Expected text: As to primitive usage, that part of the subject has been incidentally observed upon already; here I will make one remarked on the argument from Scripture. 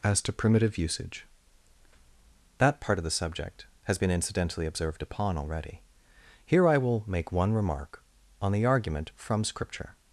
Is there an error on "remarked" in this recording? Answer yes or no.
yes